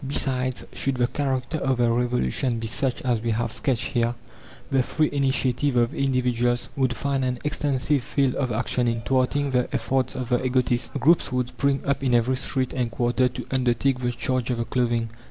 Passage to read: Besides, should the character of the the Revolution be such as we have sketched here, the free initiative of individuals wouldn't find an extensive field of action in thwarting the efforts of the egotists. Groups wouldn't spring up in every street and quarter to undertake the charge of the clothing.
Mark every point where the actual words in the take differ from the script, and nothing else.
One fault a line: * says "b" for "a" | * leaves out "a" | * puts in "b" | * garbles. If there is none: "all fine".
* leaves out "the"
* says "would" for "wouldn't"
* says "would" for "wouldn't"